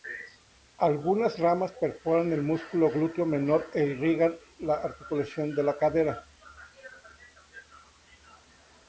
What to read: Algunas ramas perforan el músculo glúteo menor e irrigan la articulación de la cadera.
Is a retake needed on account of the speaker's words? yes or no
no